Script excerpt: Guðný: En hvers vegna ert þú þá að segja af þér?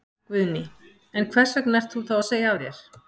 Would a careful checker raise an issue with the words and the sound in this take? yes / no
no